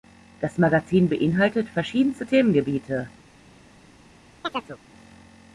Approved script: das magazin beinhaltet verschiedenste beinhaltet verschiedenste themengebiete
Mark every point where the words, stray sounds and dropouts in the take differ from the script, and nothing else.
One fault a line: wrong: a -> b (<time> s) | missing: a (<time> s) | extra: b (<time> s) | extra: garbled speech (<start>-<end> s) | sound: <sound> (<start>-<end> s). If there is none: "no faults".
missing: beinhaltet verschiedenste (2.3 s)
sound: chirp (4.4-4.8 s)